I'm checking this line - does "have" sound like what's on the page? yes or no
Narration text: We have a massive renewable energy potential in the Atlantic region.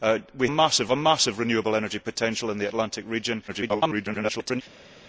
no